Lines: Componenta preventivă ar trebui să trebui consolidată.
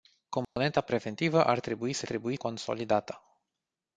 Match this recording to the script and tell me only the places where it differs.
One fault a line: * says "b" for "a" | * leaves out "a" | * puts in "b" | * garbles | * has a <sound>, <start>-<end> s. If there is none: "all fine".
* has a dropout, 0.4-0.6 s